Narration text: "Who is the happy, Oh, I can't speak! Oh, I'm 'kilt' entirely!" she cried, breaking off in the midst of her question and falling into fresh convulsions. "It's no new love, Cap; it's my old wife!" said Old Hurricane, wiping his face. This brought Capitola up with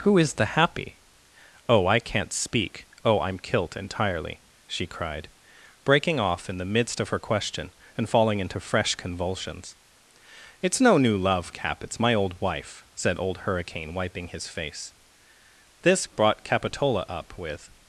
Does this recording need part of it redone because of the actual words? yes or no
no